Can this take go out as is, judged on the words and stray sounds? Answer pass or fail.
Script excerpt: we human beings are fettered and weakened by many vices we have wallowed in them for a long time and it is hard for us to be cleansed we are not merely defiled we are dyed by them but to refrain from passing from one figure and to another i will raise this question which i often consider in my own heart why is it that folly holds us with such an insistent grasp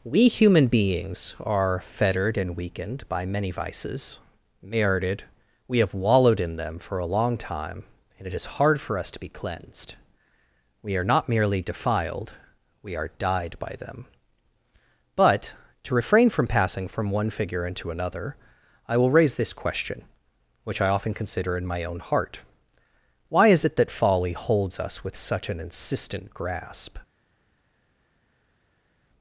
fail